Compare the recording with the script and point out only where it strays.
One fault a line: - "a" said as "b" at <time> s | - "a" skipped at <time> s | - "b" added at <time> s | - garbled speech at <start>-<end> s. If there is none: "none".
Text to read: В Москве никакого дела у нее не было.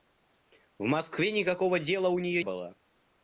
- "не" skipped at 2.4 s